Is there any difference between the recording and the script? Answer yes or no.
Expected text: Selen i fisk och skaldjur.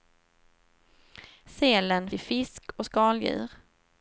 no